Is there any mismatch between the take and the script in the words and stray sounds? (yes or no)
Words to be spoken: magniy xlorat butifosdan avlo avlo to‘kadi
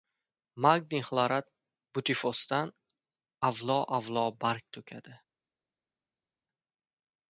yes